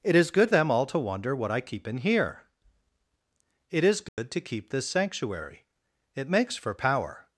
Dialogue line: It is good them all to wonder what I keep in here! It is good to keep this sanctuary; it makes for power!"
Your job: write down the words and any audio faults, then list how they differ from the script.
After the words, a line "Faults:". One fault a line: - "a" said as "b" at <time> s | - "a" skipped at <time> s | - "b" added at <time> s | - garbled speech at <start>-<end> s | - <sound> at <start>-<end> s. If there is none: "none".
It is good them all to wonder what I keep in here! It is good to keep this sanctuary; it makes for power!"
Faults:
- dropout at 4.1-4.2 s